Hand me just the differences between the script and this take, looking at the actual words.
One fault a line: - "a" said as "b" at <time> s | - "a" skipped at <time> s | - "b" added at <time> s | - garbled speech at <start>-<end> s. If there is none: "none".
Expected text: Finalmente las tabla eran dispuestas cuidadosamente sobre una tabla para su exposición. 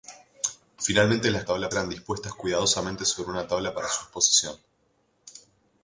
none